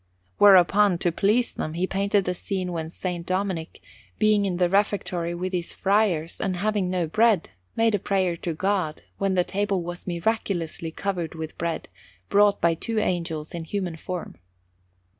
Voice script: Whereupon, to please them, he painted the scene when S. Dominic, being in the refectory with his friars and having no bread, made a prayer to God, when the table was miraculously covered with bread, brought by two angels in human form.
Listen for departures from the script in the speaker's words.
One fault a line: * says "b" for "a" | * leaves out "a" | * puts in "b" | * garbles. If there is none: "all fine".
all fine